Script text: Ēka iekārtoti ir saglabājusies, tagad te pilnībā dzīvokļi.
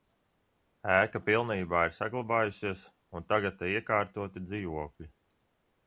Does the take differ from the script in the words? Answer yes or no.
yes